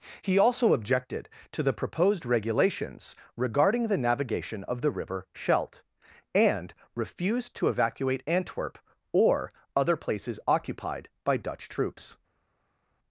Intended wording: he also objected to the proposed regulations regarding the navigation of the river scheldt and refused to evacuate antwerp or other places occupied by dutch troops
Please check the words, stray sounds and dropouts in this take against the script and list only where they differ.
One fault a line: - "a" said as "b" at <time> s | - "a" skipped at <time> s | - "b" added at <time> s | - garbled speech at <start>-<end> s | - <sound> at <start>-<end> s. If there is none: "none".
none